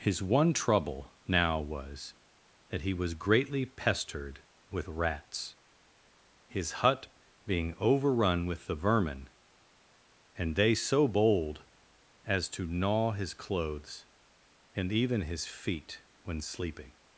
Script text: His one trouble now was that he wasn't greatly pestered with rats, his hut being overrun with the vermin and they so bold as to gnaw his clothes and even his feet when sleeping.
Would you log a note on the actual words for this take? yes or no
yes